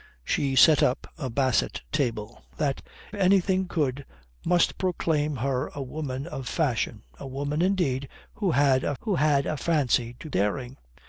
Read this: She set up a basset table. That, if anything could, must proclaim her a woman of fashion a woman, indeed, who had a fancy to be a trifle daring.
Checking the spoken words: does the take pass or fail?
fail